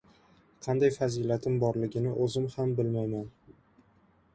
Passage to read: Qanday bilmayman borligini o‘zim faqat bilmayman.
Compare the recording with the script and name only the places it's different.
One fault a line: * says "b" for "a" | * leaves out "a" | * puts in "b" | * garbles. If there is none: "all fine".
* says "fazilatim" for "bilmayman"
* says "ham" for "faqat"